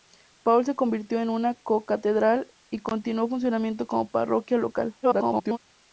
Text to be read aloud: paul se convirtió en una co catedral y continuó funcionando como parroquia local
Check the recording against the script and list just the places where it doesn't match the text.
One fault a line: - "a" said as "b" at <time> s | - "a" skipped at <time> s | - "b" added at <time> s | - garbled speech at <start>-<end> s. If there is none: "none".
- garbled speech at 5.0-5.6 s